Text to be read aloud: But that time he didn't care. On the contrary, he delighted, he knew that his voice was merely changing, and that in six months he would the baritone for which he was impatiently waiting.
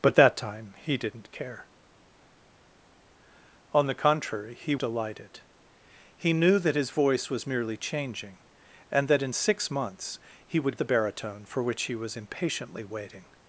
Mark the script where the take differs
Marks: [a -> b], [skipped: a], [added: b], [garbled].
But that time he didn't care. On the contrary, he delighted, he knew that his voice was merely changing, and that in six months he would the baritone for which he was impatiently waiting.